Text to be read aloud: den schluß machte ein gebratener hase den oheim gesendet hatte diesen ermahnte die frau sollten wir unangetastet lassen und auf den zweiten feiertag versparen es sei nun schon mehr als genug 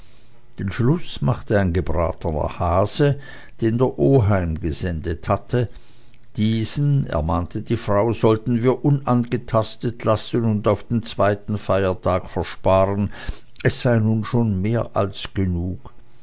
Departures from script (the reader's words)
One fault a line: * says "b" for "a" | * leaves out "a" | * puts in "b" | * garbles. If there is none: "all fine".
* puts in "der"